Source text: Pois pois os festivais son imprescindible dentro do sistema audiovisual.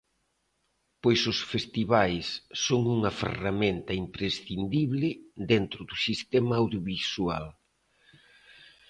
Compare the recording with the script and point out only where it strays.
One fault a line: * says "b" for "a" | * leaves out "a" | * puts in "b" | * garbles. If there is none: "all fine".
* leaves out "pois"
* puts in "unha ferramenta"